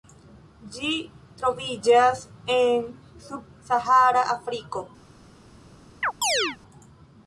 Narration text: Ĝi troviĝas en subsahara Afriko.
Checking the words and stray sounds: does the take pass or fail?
fail